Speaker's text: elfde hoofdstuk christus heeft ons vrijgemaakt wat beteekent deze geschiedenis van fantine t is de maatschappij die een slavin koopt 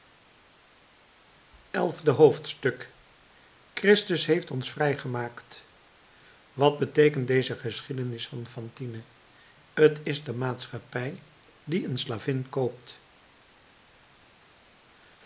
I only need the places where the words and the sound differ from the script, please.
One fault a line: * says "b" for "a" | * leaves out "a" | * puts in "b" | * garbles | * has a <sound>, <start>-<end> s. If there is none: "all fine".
all fine